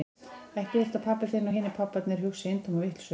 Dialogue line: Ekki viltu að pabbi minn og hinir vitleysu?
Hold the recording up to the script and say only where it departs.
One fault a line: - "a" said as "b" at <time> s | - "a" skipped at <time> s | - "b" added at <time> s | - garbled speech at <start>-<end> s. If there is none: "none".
- "minn" said as "þinn" at 1.3 s
- "pabbarnir hugsi eintóma" added at 1.8 s